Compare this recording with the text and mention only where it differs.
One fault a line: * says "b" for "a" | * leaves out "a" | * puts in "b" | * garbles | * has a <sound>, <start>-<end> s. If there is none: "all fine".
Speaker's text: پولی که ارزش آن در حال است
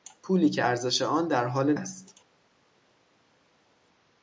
all fine